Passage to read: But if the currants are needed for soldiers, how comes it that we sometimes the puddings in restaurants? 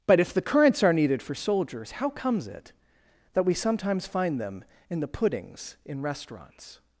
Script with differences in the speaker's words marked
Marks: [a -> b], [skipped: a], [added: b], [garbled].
But if the currants are needed for soldiers, how comes it that we sometimes [added: find them in] the puddings in restaurants?